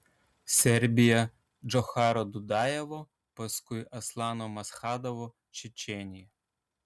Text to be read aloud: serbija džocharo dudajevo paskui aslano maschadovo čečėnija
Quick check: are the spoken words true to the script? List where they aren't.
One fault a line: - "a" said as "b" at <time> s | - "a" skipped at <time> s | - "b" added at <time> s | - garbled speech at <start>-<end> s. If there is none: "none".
none